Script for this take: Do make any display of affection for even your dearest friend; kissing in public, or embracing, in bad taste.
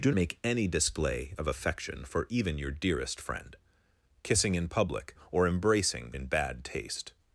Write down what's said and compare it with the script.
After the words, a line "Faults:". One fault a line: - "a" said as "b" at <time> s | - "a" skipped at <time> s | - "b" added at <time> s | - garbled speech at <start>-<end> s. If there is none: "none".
Do make any display of affection for even your dearest friend; kissing in public, or embracing, in bad taste.
Faults:
none